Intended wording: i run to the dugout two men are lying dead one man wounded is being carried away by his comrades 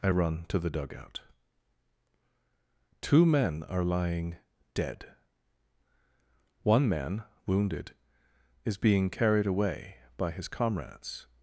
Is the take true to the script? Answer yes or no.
yes